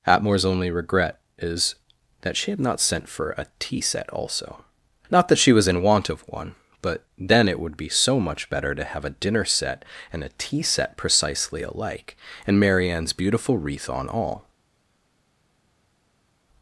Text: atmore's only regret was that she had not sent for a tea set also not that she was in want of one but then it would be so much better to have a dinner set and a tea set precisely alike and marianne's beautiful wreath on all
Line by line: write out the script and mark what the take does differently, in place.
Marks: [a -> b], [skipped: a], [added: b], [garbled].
atmore's only regret [was -> is] that she had not sent for a tea set also not that she was in want of one but then it would be so much better to have a dinner set and a tea set precisely alike and marianne's beautiful wreath on all